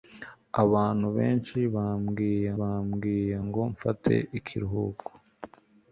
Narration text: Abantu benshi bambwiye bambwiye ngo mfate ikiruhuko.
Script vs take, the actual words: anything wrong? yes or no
no